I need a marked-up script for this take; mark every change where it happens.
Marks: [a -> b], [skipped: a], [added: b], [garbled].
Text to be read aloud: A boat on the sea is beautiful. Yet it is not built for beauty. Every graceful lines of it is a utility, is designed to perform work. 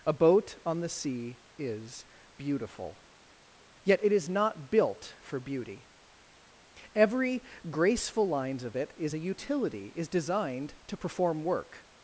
A boat on the sea is beautiful. Yet it is not built for beauty. Every graceful lines of it is a utility, is designed to perform work.